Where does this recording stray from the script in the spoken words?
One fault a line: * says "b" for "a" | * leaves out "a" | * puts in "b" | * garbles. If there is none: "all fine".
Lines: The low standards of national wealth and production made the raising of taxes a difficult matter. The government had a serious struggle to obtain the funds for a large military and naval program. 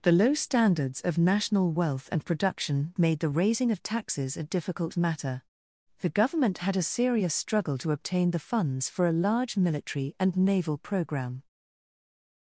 all fine